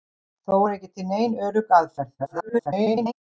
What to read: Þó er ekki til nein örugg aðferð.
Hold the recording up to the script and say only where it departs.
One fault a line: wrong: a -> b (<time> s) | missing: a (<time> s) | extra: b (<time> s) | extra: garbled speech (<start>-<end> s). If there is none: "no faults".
extra: garbled speech (2.2-3.1 s)